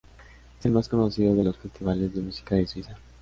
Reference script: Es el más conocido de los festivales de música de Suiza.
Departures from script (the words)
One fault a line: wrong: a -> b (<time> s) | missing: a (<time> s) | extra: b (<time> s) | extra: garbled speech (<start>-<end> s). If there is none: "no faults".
no faults